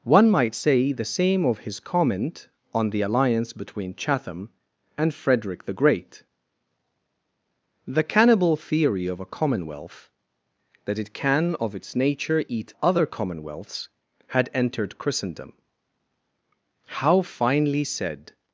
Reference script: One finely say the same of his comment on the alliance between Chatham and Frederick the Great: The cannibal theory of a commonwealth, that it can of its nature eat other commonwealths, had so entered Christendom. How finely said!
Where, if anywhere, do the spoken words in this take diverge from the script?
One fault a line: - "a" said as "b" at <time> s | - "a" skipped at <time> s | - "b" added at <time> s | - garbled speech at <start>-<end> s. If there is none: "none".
- "finely" said as "might" at 0.3 s
- "so" skipped at 14.5 s